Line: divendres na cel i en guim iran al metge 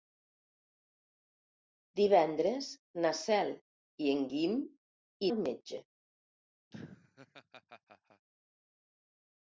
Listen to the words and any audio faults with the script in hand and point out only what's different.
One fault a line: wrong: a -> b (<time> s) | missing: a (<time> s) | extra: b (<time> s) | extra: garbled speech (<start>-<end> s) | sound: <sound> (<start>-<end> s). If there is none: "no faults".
missing: iran (4.6 s)
sound: laugh (6.7-8.3 s)